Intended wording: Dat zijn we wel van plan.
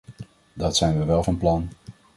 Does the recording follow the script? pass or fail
pass